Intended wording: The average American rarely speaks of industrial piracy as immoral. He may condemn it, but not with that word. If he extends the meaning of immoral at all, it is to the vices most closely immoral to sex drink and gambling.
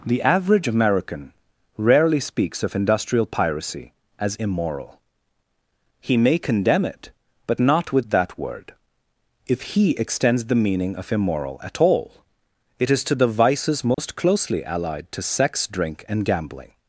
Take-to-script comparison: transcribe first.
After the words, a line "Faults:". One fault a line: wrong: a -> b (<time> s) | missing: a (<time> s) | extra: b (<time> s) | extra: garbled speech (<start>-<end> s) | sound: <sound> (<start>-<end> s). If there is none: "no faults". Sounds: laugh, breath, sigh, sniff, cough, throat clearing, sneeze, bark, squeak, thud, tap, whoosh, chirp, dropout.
The average American rarely speaks of industrial piracy as immoral. He may condemn it, but not with that word. If he extends the meaning of immoral at all, it is to the vices most closely allied to sex drink and gambling.
Faults:
sound: dropout (13.9-14.0 s)
wrong: immoral -> allied (14.6 s)